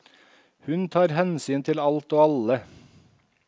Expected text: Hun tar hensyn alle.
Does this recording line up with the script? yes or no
no